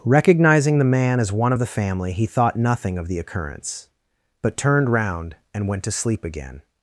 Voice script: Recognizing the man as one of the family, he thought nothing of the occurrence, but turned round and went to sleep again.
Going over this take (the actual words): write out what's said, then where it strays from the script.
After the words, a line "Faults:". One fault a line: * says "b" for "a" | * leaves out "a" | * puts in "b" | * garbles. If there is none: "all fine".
Recognizing the man as one of the family, he thought nothing of the occurrence, but turned round and went to sleep again.
Faults:
all fine